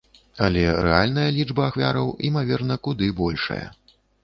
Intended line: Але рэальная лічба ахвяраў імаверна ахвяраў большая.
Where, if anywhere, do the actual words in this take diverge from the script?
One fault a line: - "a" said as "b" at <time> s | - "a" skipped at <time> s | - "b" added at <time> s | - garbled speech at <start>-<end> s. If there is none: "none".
- "ахвяраў" said as "куды" at 2.9 s